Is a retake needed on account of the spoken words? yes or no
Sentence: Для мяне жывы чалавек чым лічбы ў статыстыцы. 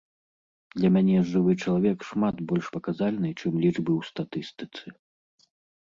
yes